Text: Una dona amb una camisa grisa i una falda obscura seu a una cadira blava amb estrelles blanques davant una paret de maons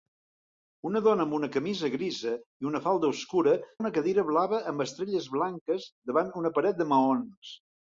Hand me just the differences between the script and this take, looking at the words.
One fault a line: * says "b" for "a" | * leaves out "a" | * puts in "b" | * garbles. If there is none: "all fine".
* leaves out "seu"